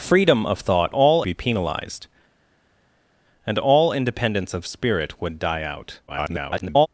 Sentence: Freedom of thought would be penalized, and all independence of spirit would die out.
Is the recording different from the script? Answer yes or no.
yes